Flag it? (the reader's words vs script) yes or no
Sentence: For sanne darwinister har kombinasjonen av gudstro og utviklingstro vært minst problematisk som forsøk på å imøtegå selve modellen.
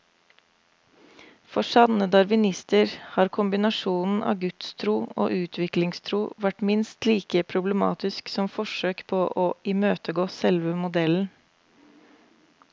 yes